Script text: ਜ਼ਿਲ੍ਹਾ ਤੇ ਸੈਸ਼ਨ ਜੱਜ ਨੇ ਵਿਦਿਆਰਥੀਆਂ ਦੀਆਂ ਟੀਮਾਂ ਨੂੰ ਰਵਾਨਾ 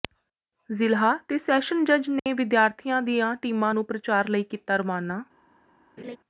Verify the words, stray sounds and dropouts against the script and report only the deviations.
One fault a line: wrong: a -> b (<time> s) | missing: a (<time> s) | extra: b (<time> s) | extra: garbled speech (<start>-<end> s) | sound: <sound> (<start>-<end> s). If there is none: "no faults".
sound: dropout (2.2-2.3 s)
extra: ਪ੍ਰਚਾਰ ਲਈ ਕੀਤਾ (3.8 s)
sound: laugh (6.0-6.2 s)